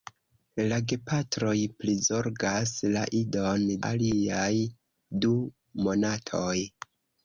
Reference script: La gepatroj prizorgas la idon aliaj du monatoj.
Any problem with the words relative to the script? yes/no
no